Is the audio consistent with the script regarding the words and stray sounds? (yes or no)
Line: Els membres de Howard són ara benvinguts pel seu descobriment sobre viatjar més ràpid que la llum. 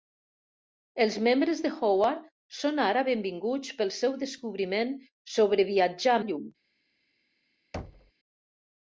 no